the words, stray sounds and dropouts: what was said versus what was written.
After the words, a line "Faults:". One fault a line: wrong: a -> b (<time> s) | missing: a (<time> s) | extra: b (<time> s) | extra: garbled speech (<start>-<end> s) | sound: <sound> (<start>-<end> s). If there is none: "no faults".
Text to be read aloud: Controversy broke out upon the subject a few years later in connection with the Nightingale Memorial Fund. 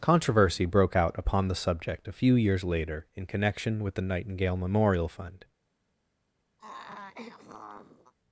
Controversy broke out upon the subject a few years later in connection with the Nightingale Memorial Fund.
Faults:
sound: throat clearing (6.6-8.1 s)